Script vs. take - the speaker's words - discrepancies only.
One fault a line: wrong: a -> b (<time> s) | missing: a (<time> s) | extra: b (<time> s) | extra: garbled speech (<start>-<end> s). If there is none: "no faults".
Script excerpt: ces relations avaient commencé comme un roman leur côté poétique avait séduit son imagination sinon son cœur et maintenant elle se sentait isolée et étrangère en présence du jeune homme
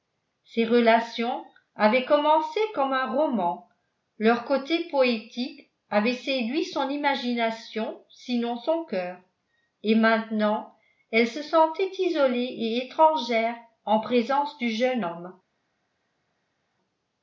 no faults